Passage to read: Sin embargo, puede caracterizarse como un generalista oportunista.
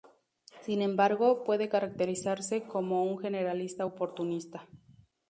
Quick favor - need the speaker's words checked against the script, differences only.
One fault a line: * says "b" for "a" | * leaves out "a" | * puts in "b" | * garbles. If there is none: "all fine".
all fine